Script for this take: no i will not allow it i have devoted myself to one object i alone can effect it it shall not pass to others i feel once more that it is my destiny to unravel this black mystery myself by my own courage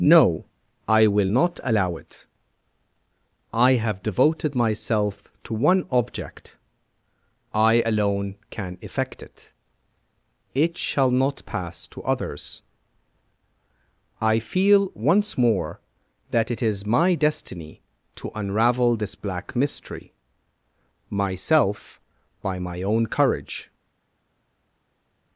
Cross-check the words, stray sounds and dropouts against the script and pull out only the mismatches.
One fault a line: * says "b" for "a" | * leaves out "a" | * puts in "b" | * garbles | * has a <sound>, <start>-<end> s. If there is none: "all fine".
all fine